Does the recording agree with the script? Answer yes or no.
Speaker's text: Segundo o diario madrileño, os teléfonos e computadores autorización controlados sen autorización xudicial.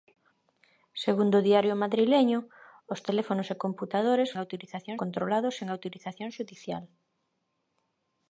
yes